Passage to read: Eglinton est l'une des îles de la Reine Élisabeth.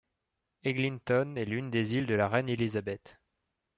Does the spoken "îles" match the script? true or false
true